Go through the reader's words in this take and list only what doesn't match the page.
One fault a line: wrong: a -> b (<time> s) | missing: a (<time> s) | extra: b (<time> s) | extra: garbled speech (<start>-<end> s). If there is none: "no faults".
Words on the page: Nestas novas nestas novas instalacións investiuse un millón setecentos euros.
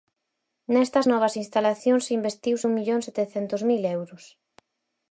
missing: nestas novas (1.3 s)
extra: mil (3.7 s)